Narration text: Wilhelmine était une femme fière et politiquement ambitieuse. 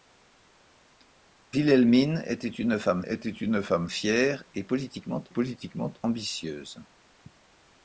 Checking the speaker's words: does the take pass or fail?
fail